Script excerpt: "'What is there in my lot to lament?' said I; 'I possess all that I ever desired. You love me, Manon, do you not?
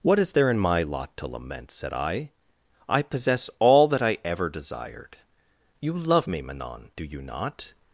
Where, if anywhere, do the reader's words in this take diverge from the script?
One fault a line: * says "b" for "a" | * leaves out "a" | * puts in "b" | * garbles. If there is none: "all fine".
all fine